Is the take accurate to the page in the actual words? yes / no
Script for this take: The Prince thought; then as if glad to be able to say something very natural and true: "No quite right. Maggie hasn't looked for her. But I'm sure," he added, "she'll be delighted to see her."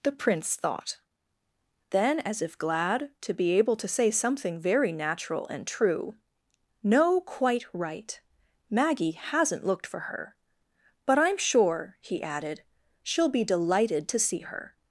yes